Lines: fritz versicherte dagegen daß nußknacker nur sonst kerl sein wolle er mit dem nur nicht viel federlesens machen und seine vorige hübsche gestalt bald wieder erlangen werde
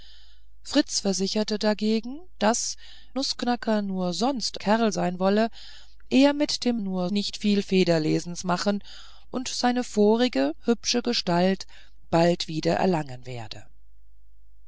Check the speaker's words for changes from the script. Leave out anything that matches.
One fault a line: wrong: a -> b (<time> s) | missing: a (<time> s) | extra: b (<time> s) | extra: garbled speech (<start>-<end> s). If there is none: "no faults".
no faults